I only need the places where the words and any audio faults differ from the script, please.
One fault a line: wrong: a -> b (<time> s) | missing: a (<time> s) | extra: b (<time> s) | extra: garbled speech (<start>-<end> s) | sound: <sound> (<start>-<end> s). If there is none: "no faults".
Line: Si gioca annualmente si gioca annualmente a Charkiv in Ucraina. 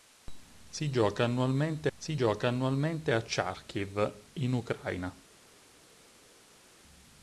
no faults